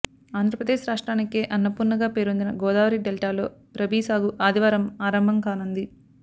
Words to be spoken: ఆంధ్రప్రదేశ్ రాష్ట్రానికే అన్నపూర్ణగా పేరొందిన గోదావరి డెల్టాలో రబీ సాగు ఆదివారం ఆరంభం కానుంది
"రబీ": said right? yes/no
yes